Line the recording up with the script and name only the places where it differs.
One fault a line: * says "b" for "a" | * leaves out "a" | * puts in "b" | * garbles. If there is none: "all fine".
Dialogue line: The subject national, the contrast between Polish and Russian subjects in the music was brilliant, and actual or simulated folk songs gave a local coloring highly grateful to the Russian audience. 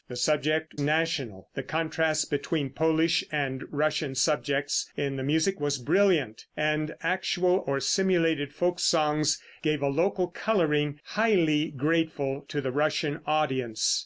all fine